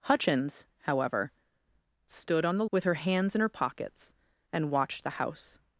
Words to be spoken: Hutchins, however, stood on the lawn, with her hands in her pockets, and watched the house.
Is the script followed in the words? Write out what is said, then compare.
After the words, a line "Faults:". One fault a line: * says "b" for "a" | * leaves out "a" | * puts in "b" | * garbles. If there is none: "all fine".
Hutchins, however, stood on the with her hands in her pockets, and watched the house.
Faults:
* leaves out "lawn"